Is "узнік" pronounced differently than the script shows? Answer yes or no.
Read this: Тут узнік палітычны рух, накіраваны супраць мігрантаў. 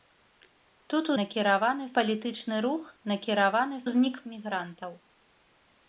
yes